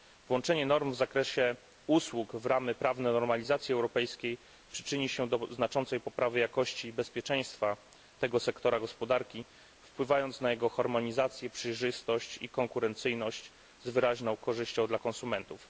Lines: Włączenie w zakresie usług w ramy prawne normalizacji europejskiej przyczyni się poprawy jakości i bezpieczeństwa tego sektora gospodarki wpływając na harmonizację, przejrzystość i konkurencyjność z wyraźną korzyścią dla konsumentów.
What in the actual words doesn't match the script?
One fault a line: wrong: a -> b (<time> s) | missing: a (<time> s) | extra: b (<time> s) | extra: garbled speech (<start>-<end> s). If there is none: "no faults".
extra: norm (0.7 s)
extra: do znaczącej (5.3 s)
extra: jego (10.5 s)